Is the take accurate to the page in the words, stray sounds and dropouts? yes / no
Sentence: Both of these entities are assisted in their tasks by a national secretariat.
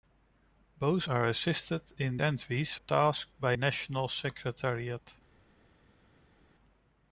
no